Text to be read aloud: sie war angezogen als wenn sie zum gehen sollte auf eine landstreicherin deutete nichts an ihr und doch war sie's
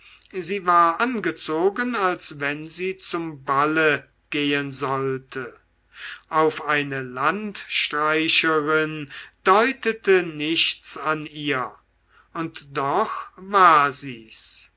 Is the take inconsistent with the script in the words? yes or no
yes